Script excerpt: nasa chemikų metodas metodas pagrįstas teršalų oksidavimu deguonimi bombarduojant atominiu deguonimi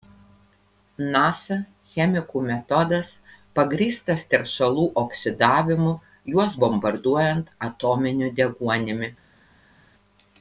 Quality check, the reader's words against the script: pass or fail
fail